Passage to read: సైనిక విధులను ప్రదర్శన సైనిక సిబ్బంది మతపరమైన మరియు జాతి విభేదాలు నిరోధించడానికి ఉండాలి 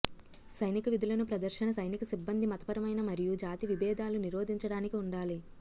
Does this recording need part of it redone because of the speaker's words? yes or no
no